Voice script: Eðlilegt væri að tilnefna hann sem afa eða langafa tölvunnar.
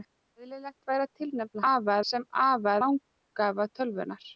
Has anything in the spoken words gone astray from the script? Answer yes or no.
yes